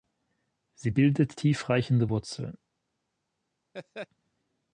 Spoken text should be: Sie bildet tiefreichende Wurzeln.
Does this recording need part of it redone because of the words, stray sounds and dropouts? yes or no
yes